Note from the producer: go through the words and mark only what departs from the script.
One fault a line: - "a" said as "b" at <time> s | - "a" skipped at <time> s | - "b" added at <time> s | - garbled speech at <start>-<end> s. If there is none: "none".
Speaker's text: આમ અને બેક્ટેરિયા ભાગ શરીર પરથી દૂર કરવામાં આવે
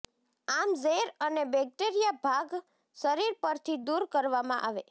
- "ઝેર" added at 0.8 s